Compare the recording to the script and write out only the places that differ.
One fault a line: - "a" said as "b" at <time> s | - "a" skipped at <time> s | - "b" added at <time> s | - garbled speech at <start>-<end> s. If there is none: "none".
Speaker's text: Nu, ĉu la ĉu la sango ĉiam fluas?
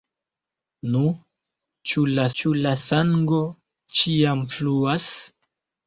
none